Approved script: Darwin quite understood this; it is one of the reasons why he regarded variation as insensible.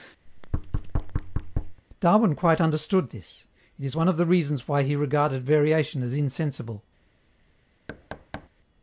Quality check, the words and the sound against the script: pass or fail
fail